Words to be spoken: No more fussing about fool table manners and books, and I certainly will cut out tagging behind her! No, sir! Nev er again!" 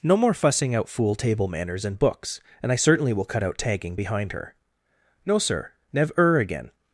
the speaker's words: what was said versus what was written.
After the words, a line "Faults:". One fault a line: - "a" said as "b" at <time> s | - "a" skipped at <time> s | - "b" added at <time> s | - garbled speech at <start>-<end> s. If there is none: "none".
No more fussing out fool table manners and books, and I certainly will cut out tagging behind her! No, sir! Nev er again!"
Faults:
- "about" said as "out" at 0.7 s